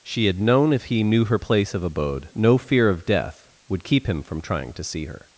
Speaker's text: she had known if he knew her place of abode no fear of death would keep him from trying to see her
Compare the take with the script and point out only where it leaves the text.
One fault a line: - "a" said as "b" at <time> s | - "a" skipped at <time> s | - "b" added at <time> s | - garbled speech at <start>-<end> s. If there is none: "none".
none